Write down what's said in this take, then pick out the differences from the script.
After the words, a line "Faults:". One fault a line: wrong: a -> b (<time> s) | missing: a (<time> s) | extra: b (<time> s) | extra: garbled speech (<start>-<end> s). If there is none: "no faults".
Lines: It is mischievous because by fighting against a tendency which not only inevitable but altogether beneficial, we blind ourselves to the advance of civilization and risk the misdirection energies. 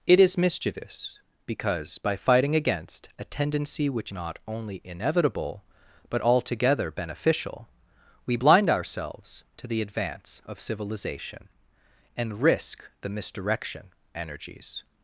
It is mischievous because by fighting against a tendency which not only inevitable but altogether beneficial, we blind ourselves to the advance of civilization and risk the misdirection energies.
Faults:
no faults